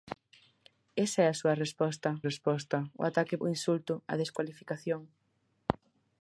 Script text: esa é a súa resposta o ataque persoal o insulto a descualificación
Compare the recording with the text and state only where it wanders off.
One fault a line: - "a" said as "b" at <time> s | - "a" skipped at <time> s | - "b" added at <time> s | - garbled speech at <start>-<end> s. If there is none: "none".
- "resposta" added at 2.3 s
- "persoal" skipped at 3.4 s